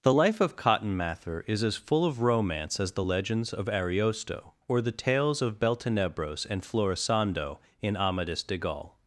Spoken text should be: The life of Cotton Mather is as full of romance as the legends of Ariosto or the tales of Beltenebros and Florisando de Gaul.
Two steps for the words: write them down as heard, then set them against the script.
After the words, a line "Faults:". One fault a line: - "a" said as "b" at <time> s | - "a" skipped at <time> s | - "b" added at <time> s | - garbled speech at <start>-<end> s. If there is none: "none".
The life of Cotton Mather is as full of romance as the legends of Ariosto or the tales of Beltenebros and Florisando in Amadis de Gaul.
Faults:
- "in Amadis" added at 7.8 s